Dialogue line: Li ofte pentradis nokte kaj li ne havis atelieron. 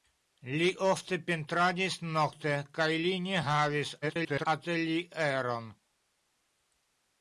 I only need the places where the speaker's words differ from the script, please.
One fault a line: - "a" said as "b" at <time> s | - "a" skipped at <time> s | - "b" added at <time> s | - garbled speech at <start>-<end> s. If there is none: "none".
- garbled speech at 4.0-4.5 s